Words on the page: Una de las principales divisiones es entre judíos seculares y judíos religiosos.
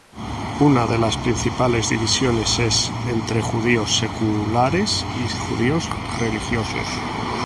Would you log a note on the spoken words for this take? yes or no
no